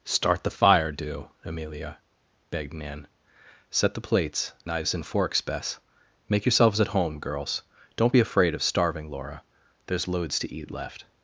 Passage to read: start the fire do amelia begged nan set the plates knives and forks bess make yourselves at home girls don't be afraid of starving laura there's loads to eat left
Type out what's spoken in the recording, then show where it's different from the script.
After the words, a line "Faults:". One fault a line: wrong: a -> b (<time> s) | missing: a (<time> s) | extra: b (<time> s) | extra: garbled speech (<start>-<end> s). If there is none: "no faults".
start the fire do amelia begged nan set the plates knives and forks bess make yourselves at home girls don't be afraid of starving laura there's loads to eat left
Faults:
no faults